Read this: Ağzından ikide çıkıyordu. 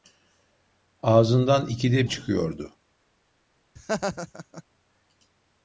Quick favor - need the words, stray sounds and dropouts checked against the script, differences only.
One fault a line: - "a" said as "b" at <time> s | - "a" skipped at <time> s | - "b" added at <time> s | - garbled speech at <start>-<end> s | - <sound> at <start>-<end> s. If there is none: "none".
- laugh at 3.8-4.6 s